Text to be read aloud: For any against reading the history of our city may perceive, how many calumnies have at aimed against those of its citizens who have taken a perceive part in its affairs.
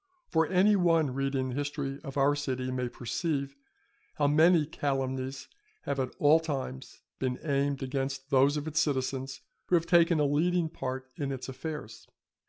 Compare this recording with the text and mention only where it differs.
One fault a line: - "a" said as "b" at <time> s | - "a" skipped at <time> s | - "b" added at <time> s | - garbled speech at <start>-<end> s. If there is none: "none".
- "against" said as "one" at 0.8 s
- "all times been" added at 6.2 s
- "perceive" said as "leading" at 10.3 s